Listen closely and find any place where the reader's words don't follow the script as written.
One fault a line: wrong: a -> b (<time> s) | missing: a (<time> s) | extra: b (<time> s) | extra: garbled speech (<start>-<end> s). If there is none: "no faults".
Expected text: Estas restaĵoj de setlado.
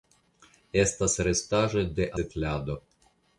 no faults